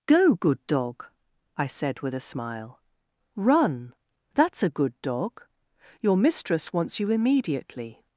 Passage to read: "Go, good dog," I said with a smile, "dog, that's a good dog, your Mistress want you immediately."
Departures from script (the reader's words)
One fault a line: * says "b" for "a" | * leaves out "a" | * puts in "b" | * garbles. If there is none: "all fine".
* says "run" for "dog"
* says "wants" for "want"